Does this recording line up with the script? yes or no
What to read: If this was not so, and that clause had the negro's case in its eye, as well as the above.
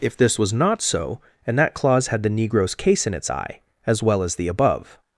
yes